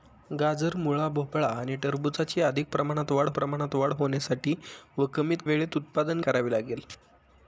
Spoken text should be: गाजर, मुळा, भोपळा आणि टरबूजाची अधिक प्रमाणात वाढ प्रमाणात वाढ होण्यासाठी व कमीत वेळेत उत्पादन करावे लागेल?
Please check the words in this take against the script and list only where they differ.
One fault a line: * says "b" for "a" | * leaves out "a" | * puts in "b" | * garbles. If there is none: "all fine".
all fine